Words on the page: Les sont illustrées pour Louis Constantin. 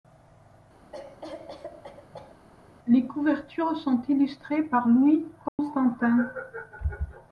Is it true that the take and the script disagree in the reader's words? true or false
true